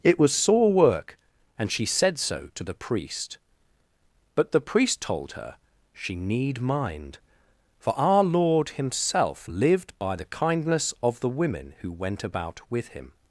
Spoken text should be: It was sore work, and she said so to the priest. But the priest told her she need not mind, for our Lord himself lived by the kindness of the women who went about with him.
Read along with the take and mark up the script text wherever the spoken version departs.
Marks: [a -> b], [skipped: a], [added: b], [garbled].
It was sore work, and she said so to the priest. But the priest told her she need [skipped: not] mind, for our Lord himself lived by the kindness of the women who went about with him.